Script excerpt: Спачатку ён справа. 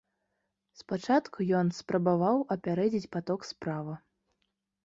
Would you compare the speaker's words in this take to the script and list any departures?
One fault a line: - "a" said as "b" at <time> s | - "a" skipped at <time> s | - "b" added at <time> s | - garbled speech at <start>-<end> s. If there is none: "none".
- "спрабаваў апярэдзіць паток" added at 1.8 s